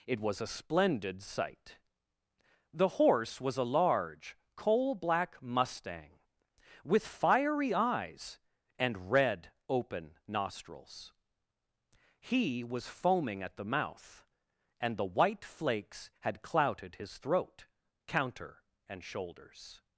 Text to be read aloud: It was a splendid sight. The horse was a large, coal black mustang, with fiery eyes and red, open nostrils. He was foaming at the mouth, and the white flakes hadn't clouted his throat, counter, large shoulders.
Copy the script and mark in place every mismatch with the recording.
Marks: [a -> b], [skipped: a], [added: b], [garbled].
It was a splendid sight. The horse was a large, coal black mustang, with fiery eyes and red, open nostrils. He was foaming at the mouth, and the white flakes [hadn't -> had] clouted his throat, counter, [large -> and] shoulders.